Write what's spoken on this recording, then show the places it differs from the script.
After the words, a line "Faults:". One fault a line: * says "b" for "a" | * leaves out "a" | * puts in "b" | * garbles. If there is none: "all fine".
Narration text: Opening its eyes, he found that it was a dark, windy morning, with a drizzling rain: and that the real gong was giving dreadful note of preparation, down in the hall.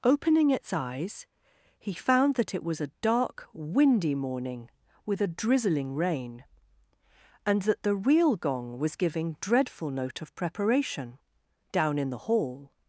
Opening its eyes, he found that it was a dark, windy morning, with a drizzling rain: and that the real gong was giving dreadful note of preparation, down in the hall.
Faults:
all fine